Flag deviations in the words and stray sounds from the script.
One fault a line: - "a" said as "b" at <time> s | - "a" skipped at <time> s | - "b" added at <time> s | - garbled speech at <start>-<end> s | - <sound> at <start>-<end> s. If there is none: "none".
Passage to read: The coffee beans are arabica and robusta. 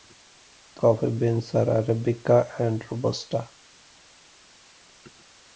none